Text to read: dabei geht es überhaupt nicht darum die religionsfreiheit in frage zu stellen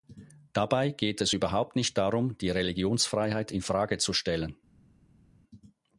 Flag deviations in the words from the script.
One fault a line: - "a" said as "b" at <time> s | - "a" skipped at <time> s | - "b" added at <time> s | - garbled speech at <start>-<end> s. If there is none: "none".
none